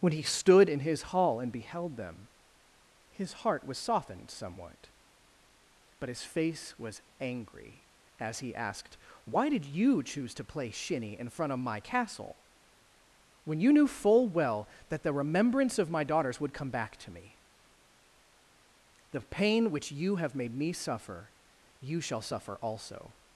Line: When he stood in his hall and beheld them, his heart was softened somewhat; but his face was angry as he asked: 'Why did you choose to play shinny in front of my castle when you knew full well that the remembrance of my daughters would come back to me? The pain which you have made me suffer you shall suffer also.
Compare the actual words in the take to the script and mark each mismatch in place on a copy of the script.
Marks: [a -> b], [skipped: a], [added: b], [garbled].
When he stood in his hall and beheld them, his heart was softened somewhat; but his face was angry as he asked: 'Why did you choose to play shinny in front of my castle when you knew full well that the remembrance of my daughters would come back to me? The pain which you have made me suffer you shall suffer also.